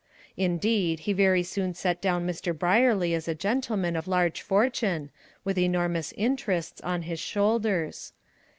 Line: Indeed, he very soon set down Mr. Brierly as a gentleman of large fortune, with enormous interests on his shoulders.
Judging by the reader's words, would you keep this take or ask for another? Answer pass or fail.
pass